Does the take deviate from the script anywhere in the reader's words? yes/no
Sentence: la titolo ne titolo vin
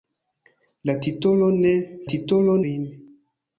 no